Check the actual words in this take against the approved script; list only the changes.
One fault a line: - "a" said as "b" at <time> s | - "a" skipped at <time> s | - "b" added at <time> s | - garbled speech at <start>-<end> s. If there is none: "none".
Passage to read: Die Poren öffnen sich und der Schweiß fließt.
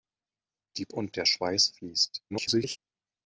- "Poren öffnen sich" skipped at 0.9 s
- garbled speech at 2.3-2.8 s